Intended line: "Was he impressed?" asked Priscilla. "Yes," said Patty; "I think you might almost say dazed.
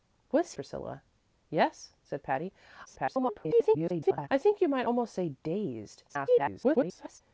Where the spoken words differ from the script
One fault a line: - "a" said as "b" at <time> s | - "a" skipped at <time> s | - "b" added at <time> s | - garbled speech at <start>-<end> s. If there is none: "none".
- "he impressed asked" skipped at 0.5 s
- garbled speech at 2.9-4.3 s
- garbled speech at 6.1-7.2 s